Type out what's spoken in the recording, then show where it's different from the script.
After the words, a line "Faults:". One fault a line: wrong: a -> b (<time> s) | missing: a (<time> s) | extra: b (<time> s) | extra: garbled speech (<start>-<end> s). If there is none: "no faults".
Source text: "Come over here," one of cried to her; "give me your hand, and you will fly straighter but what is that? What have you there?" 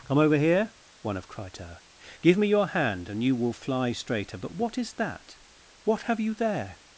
"Come over here," one of cried to her; "give me your hand, and you will fly straighter but what is that? What have you there?"
Faults:
no faults